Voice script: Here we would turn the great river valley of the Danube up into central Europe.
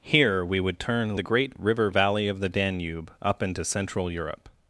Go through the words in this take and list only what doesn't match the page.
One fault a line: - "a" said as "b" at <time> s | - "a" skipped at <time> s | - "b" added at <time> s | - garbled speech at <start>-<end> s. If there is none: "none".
none